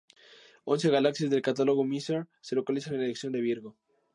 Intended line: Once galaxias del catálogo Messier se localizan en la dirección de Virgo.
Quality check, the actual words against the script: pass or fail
pass